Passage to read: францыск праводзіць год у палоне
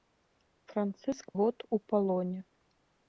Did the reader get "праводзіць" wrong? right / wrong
wrong